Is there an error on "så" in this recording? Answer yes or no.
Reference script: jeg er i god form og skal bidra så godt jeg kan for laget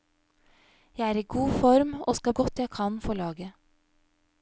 yes